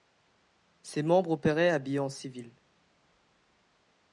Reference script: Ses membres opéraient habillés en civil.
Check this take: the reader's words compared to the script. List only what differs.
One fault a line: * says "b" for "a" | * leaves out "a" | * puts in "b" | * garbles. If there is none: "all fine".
all fine